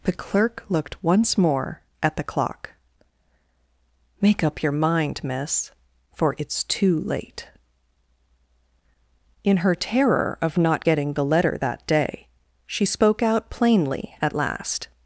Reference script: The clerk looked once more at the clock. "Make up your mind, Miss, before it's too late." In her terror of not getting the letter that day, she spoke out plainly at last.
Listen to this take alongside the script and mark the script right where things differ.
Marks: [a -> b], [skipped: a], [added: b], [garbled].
The clerk looked once more at the clock. "Make up your mind, Miss, [before -> for] it's too late." In her terror of not getting the letter that day, she spoke out plainly at last.